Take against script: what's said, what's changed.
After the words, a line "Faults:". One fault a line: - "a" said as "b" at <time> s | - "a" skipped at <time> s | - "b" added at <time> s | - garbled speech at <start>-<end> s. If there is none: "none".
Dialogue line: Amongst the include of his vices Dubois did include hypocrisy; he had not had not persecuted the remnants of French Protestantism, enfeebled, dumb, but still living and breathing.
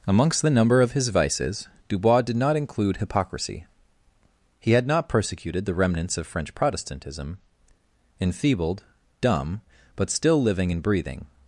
Amongst the number of his vices Dubois did not include hypocrisy; he had not persecuted the remnants of French Protestantism, enfeebled, dumb, but still living and breathing.
Faults:
- "include" said as "number" at 0.5 s
- "not" added at 2.4 s
- "had not" skipped at 5.1 s